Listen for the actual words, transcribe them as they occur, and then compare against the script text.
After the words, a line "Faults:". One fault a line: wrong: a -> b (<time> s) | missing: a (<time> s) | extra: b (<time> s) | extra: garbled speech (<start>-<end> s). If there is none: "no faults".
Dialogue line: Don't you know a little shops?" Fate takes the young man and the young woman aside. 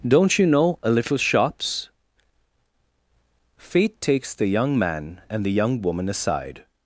Don't you know a little shops?" Fate takes the young man and the young woman aside.
Faults:
no faults